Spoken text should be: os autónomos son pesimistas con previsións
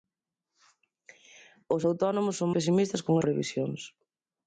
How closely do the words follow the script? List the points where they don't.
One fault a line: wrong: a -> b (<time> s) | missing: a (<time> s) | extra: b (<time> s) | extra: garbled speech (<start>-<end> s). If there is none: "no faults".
no faults